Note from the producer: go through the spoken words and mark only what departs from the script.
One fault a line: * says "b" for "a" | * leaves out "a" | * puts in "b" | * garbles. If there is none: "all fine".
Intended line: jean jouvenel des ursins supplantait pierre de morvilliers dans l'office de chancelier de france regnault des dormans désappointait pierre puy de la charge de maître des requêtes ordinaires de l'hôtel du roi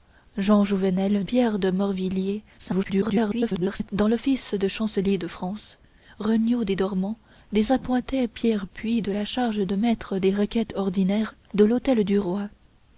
* leaves out "des ursins supplantait"
* garbles